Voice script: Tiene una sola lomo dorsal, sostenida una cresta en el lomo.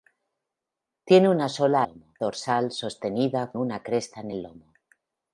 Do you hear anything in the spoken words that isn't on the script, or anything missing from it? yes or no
no